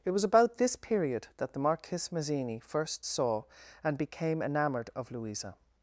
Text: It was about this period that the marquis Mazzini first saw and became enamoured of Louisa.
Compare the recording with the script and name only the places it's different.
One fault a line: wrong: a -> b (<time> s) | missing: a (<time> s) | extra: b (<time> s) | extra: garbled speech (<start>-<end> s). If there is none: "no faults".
no faults